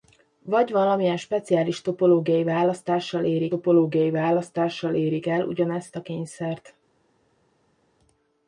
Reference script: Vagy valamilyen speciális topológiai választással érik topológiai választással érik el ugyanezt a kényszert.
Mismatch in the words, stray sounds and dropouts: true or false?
false